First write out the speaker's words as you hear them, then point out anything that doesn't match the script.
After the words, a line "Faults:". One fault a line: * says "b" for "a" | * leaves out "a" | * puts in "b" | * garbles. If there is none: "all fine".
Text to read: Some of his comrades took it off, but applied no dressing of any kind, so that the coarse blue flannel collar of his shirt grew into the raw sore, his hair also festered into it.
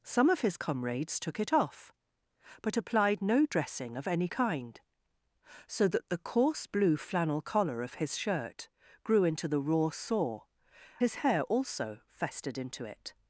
Some of his comrades took it off, but applied no dressing of any kind, so that the coarse blue flannel collar of his shirt grew into the raw sore, his hair also festered into it.
Faults:
all fine